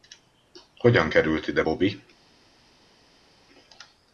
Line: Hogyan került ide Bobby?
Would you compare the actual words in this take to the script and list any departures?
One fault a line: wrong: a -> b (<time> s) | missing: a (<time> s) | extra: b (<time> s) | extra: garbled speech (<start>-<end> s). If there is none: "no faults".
no faults